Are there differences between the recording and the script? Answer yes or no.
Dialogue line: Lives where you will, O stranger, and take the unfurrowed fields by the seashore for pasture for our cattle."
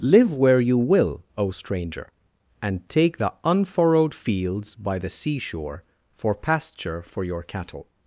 yes